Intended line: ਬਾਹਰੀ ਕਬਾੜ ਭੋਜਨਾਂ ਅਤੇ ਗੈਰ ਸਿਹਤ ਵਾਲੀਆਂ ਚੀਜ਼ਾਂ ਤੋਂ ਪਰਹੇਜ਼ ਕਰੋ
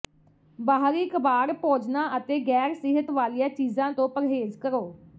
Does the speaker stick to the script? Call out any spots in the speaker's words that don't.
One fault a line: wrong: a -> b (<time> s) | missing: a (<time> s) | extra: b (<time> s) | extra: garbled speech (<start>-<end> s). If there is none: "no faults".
no faults